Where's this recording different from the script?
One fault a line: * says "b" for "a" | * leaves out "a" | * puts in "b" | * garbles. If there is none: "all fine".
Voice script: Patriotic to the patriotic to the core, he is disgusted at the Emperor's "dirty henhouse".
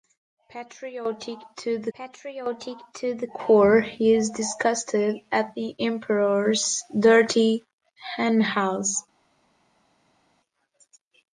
all fine